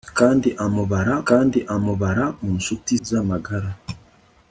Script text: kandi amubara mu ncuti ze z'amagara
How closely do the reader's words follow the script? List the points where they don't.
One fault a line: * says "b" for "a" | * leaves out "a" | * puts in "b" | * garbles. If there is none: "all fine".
* puts in "kandi amubara"
* leaves out "ze"